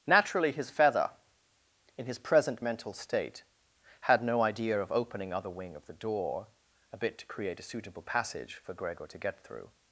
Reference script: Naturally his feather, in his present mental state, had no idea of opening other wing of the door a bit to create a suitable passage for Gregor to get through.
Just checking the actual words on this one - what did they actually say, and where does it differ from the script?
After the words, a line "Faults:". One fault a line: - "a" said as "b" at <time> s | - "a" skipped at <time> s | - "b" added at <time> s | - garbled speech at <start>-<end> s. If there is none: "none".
Naturally his feather, in his present mental state, had no idea of opening other wing of the door a bit to create a suitable passage for Gregor to get through.
Faults:
none